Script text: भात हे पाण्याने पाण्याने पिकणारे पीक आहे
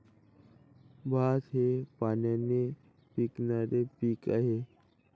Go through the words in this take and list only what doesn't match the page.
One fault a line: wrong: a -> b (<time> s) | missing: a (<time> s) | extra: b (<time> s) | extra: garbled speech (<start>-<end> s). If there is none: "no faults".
missing: पाण्याने (2.6 s)